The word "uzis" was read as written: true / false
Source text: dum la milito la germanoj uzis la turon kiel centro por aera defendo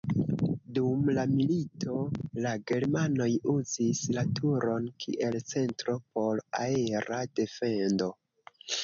true